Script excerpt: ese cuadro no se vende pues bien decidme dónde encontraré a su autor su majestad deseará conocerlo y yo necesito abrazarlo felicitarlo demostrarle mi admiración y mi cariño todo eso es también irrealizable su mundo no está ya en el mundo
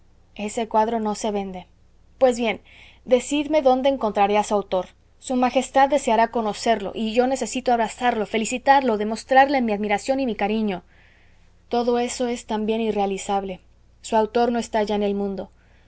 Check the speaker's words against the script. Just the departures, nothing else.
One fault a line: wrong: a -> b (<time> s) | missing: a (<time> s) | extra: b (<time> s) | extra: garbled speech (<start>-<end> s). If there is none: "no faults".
wrong: mundo -> autor (14.2 s)